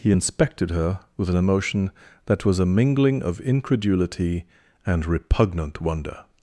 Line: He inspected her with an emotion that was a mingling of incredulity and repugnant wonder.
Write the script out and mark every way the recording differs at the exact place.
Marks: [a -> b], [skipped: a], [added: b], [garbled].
He inspected her with an emotion that was a mingling of incredulity and repugnant wonder.